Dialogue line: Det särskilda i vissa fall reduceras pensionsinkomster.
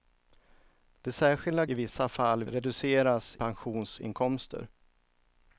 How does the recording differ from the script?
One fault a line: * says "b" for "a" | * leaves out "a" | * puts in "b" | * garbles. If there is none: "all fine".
all fine